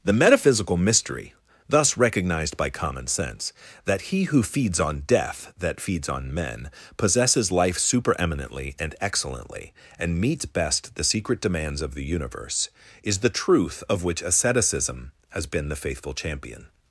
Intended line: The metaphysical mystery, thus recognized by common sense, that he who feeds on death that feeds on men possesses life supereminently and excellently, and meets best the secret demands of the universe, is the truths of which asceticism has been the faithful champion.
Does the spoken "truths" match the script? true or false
false